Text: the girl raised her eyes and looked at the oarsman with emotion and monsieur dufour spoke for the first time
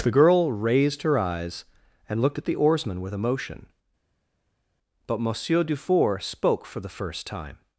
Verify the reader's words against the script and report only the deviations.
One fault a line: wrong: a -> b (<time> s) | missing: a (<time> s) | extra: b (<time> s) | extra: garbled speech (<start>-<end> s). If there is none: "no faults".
wrong: and -> but (5.1 s)